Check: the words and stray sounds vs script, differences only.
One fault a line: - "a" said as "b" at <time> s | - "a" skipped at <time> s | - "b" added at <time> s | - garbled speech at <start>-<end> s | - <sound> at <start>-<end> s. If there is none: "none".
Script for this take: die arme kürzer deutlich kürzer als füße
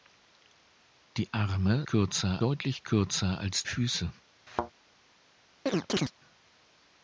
- thud at 4.5-4.7 s
- chirp at 5.7-6.1 s